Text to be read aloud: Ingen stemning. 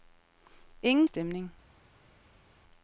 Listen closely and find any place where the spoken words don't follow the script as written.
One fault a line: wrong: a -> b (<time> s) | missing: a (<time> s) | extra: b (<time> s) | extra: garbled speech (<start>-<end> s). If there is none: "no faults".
no faults